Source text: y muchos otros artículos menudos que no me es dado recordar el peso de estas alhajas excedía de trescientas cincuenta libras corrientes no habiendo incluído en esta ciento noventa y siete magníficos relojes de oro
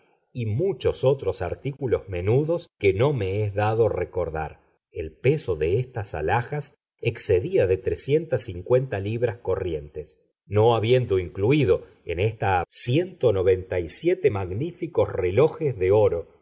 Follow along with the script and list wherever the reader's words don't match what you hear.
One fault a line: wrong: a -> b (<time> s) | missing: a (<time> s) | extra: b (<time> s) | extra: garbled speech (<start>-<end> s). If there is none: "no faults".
no faults